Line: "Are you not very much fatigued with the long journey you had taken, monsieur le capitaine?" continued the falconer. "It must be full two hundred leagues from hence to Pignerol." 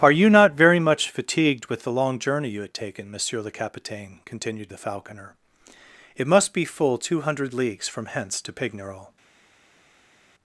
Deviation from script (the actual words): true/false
false